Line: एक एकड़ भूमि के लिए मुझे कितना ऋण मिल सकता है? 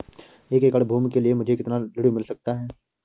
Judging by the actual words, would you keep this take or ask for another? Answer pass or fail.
pass